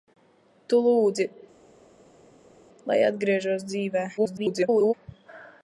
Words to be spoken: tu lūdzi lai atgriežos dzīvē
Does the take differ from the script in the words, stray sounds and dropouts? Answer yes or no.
yes